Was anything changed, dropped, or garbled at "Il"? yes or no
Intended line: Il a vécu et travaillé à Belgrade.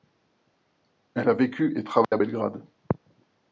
yes